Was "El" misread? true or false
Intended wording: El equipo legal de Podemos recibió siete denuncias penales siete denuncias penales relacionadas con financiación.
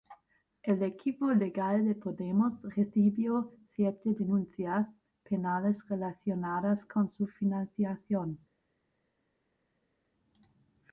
false